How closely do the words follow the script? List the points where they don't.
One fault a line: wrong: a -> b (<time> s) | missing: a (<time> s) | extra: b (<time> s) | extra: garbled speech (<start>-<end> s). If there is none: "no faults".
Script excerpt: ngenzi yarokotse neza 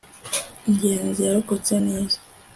no faults